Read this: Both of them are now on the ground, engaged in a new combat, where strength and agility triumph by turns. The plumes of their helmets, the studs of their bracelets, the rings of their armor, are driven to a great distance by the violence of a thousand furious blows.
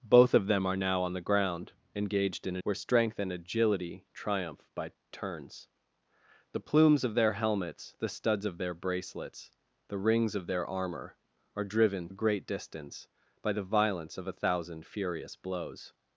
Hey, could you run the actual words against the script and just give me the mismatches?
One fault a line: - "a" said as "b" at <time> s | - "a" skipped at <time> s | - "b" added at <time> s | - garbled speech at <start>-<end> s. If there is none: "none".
- "new combat" skipped at 2.6 s
- "to" skipped at 12.1 s